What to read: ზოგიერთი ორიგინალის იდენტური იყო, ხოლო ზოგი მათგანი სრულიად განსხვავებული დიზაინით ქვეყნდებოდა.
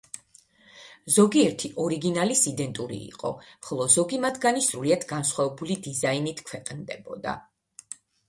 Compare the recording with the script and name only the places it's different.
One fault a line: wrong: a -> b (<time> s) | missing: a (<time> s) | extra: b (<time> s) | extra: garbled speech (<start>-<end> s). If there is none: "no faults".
no faults